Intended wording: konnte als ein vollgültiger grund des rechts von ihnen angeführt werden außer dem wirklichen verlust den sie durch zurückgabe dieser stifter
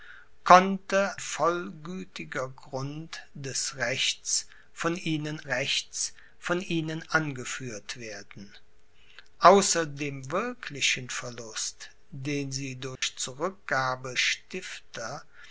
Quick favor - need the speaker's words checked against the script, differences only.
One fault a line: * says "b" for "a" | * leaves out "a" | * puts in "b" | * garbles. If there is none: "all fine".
* leaves out "als ein"
* puts in "rechts von ihnen"
* leaves out "dieser"